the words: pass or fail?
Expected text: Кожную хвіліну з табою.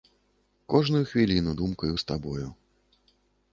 fail